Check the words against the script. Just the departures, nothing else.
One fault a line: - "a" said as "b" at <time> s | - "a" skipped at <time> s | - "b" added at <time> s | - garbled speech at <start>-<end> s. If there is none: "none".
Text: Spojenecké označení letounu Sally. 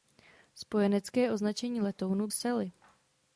none